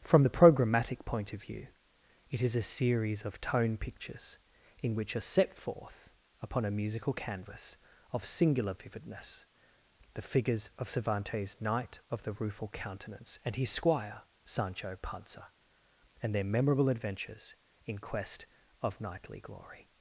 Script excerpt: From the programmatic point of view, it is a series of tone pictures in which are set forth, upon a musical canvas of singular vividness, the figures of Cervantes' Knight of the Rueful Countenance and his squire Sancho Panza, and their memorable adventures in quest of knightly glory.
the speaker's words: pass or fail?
pass